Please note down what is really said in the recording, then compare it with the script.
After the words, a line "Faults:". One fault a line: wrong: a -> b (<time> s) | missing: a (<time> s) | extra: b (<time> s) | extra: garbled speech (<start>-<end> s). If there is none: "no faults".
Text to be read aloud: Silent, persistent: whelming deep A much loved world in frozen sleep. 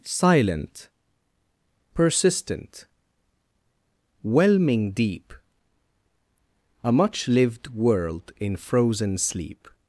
Silent, persistent: whelming deep A much lived world in frozen sleep.
Faults:
wrong: loved -> lived (7.3 s)